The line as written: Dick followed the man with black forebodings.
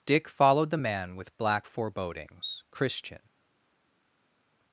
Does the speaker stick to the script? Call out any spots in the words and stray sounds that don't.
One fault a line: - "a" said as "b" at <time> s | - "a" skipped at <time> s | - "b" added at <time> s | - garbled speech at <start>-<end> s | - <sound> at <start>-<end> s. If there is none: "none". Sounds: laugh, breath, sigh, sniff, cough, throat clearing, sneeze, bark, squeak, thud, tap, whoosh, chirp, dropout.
- "christian" added at 2.7 s